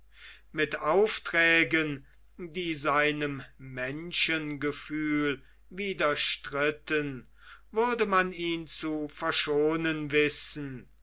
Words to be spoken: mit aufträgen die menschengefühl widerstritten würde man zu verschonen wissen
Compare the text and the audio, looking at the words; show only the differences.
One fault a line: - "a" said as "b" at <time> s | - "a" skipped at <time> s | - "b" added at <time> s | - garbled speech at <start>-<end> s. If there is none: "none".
- "seinem" added at 2.7 s
- "ihn" added at 8.3 s